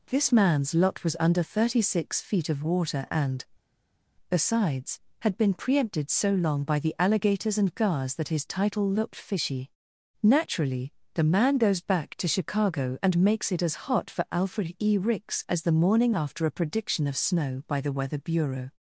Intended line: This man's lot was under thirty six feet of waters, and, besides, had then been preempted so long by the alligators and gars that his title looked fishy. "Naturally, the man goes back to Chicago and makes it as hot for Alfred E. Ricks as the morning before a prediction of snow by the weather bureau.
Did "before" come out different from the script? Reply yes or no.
yes